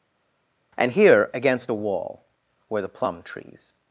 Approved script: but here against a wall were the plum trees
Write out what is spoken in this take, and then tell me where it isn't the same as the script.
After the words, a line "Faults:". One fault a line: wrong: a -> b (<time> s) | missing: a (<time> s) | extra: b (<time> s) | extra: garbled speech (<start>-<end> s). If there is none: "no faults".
and here against a wall were the plum trees
Faults:
wrong: but -> and (0.8 s)